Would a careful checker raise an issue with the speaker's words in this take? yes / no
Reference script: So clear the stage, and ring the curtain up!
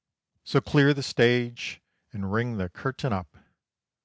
no